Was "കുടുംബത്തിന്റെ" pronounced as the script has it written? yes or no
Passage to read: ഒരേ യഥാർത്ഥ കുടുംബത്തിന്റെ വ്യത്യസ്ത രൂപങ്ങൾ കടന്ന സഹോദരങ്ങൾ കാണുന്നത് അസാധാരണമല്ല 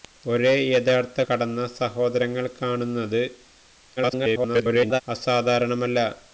no